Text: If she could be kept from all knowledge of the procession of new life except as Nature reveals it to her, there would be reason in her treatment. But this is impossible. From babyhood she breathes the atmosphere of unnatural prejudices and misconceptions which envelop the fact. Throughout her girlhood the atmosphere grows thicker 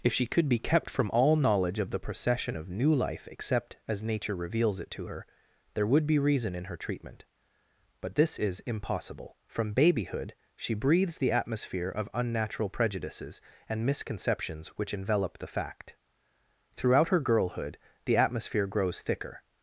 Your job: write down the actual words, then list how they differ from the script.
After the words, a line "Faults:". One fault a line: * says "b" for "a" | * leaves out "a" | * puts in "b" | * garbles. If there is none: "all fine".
If she could be kept from all knowledge of the procession of new life except as Nature reveals it to her, there would be reason in her treatment. But this is impossible. From babyhood she breathes the atmosphere of unnatural prejudices and misconceptions which envelop the fact. Throughout her girlhood the atmosphere grows thicker
Faults:
all fine